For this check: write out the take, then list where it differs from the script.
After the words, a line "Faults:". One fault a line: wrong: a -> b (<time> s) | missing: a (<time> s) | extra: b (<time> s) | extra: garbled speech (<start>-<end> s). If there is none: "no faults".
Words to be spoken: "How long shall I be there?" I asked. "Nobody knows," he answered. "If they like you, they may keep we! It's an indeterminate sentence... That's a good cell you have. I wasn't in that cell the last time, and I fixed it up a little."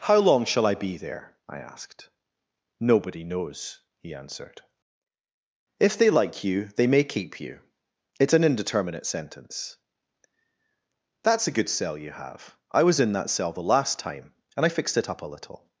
"How long shall I be there?" I asked. "Nobody knows," he answered. "If they like you, they may keep you! It's an indeterminate sentence... That's a good cell you have. I was in that cell the last time, and I fixed it up a little."
Faults:
wrong: we -> you (7.4 s)
wrong: wasn't -> was (12.8 s)